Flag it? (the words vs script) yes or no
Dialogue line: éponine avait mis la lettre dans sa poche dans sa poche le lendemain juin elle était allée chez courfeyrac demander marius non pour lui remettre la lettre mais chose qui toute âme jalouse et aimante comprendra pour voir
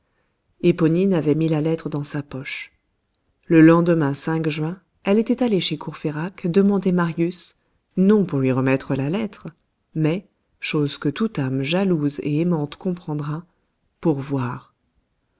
yes